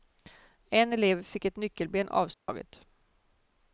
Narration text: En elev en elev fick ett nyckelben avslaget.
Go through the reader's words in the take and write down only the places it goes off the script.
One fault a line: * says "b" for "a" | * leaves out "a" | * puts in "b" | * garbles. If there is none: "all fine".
* leaves out "en elev"